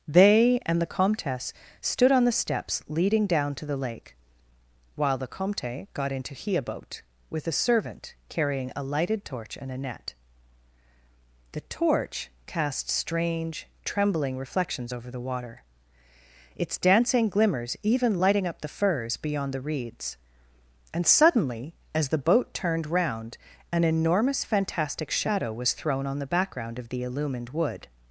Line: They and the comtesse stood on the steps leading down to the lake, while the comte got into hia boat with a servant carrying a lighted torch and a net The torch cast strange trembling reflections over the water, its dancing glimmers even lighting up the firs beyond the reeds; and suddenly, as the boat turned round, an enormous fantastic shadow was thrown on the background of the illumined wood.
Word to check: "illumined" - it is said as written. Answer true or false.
true